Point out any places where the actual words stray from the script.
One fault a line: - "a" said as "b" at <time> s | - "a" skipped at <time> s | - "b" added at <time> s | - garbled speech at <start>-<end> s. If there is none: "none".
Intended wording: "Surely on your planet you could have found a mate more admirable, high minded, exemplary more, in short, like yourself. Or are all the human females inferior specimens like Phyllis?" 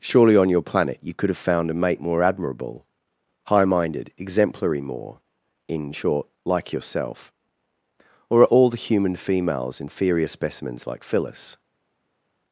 none